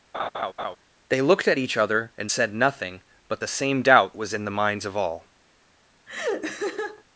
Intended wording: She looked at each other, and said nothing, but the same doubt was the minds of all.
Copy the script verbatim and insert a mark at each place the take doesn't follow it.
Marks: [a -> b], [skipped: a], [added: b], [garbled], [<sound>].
[laugh] [She -> They] looked at each other, and said nothing, but the same doubt was [added: in] the minds of all. [laugh]